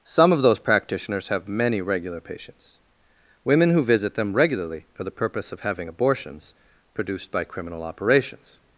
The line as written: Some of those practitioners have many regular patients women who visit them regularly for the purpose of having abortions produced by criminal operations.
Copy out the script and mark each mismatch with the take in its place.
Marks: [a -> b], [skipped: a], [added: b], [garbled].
Some of those practitioners have many regular patients women who visit them regularly for the purpose of having abortions produced by criminal operations.